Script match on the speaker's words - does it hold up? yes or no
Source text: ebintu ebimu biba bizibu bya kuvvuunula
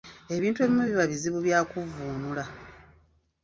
yes